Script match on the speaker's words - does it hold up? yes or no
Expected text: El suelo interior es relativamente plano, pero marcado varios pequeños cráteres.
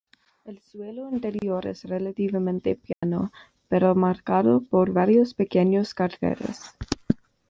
no